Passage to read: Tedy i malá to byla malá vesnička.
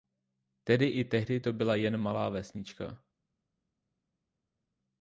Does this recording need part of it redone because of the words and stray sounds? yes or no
yes